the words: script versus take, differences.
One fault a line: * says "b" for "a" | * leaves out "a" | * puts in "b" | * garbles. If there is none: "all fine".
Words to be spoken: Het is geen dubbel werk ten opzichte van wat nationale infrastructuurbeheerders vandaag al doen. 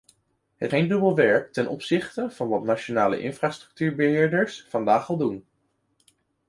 * leaves out "is"